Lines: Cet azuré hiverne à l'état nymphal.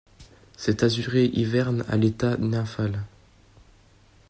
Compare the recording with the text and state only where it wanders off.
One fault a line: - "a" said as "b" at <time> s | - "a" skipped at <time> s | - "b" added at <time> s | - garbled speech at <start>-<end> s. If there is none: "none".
none